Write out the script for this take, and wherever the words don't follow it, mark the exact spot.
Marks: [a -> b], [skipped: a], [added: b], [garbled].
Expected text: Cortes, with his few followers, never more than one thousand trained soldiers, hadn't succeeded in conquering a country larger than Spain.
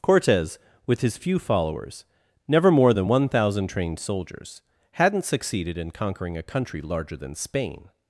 Cortes, with his few followers, never more than one thousand trained soldiers, hadn't succeeded in conquering a country larger than Spain.